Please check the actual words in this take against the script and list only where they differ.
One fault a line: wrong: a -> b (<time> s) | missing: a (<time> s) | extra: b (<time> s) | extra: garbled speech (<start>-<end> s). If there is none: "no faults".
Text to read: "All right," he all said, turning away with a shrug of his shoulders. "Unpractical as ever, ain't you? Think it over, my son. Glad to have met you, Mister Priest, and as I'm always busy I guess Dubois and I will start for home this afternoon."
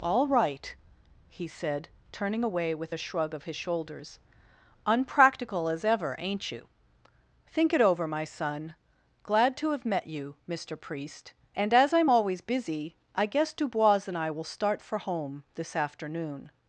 missing: all (1.5 s)